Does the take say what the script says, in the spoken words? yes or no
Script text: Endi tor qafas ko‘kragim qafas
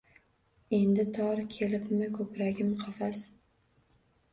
no